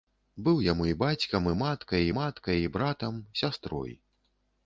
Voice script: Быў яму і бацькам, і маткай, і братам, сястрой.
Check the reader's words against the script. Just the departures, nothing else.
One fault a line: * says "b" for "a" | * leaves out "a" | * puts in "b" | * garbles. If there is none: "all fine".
* puts in "маткай"